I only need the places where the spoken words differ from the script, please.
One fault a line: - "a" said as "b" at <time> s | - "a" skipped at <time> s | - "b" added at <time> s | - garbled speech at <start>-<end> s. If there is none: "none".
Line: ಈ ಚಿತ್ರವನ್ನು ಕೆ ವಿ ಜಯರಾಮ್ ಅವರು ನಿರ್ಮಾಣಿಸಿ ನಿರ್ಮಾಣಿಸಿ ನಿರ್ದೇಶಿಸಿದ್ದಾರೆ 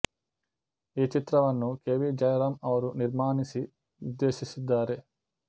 - "ನಿರ್ಮಾಣಿಸಿ" skipped at 3.6 s